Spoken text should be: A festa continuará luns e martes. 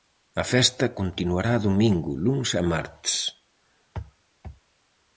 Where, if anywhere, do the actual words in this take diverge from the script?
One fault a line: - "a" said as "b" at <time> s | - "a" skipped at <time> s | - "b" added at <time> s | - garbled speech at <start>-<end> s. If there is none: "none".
- "domingo" added at 1.7 s